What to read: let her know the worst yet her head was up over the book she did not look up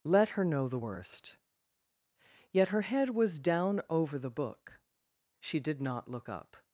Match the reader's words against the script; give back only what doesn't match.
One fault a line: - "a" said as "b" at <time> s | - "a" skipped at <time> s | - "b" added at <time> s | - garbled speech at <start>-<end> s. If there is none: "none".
- "up" said as "down" at 3.4 s